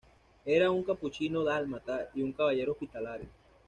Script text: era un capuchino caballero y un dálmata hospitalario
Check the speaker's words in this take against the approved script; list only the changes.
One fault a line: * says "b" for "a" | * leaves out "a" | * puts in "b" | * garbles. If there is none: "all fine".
* says "dálmata" for "caballero"
* says "caballero" for "dálmata"